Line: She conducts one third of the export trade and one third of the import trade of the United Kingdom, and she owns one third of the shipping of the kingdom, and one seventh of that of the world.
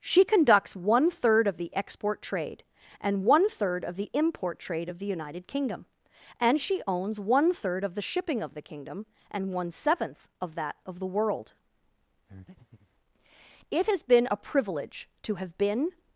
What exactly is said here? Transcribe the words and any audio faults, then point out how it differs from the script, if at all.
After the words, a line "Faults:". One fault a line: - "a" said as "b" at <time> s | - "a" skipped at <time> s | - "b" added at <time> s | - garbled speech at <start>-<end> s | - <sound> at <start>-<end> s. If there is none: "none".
She conducts one third of the export trade and one third of the import trade of the United Kingdom, and she owns one third of the shipping of the kingdom, and one seventh of that of the world. It has been a privilege to have been
Faults:
- breath at 12.3-12.9 s
- "It has been a privilege to have been" added at 13.7 s